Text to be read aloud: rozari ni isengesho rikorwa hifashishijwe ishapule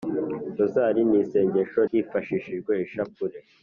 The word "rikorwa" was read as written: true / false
false